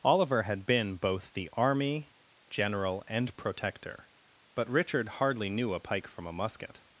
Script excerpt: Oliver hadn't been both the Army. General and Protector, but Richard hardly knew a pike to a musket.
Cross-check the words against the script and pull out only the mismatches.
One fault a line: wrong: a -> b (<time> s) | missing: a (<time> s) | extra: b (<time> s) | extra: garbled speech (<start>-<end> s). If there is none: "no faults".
wrong: hadn't -> had (0.4 s)
wrong: to -> from (6.0 s)